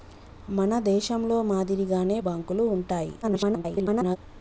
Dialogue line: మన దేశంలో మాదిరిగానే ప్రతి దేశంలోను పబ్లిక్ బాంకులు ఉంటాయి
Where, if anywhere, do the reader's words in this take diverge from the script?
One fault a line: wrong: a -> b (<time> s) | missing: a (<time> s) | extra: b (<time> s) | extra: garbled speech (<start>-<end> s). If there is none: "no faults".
missing: ప్రతి దేశంలోను పబ్లిక్ (2.2 s)
extra: garbled speech (3.2-4.2 s)